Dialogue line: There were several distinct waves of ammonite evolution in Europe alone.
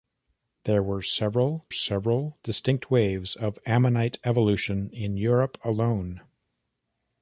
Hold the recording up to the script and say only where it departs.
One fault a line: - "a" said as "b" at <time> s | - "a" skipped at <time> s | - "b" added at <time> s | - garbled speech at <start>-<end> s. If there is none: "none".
- "several" added at 1.7 s